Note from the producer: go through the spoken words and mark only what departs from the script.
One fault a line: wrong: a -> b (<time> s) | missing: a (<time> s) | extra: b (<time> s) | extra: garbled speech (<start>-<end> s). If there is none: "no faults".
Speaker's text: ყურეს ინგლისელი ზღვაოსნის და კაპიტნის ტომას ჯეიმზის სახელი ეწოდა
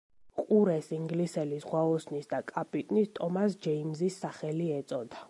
no faults